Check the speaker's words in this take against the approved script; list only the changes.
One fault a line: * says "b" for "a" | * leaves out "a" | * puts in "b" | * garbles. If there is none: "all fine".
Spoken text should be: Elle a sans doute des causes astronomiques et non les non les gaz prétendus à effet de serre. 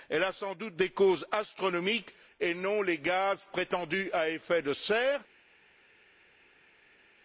* leaves out "non les"